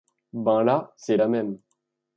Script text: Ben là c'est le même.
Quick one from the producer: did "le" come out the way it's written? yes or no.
no